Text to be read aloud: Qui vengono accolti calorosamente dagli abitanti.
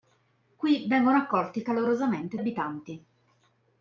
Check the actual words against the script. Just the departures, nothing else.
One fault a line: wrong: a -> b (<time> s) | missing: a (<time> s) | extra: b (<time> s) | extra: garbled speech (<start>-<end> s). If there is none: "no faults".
missing: dagli (2.4 s)